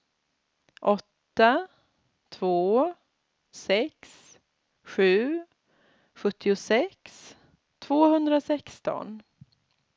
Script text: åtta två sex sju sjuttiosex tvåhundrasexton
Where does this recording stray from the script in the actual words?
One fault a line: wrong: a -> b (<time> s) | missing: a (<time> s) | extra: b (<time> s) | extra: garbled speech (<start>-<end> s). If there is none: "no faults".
no faults